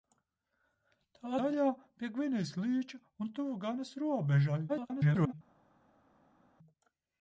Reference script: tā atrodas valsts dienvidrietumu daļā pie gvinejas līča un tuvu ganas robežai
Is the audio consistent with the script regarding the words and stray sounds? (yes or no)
no